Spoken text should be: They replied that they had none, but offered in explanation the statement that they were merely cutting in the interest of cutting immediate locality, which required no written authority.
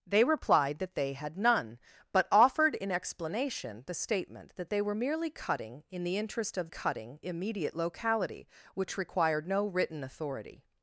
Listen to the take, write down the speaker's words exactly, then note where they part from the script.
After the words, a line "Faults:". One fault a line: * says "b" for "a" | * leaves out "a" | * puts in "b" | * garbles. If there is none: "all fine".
They replied that they had none, but offered in explanation the statement that they were merely cutting in the interest of cutting immediate locality, which required no written authority.
Faults:
all fine